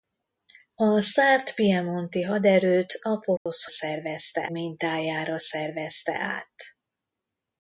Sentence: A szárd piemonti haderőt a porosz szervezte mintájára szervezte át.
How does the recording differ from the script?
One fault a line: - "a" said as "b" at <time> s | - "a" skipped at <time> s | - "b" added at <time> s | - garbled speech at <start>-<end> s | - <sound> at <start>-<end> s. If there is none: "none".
- dropout at 3.4-3.5 s